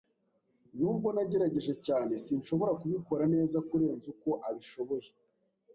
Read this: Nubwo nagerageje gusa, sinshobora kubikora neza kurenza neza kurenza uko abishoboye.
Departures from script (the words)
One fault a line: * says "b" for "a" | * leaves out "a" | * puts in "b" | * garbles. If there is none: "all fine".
* says "cyane" for "gusa"
* leaves out "neza kurenza"